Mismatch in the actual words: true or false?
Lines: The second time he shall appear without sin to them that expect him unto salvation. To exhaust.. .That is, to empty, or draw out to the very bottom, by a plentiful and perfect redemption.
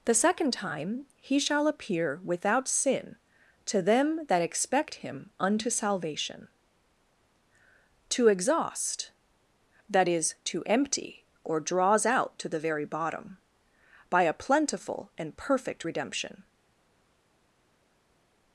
true